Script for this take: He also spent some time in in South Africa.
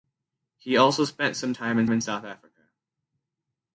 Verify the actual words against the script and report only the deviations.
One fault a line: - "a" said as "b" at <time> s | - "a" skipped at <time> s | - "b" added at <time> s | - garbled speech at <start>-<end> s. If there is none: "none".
none